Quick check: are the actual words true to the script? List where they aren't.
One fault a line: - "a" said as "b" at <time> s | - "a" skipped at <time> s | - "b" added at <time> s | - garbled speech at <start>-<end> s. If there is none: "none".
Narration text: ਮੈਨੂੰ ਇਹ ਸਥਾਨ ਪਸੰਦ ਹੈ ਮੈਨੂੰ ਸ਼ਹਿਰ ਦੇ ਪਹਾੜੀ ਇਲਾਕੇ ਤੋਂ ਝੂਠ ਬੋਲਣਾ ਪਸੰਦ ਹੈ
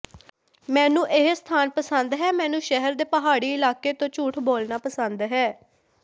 none